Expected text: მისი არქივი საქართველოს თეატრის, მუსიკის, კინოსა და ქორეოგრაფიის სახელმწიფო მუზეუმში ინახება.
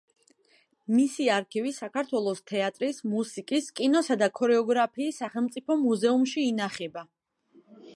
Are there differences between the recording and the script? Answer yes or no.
no